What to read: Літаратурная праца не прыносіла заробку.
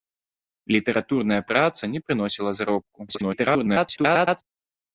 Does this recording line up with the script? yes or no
no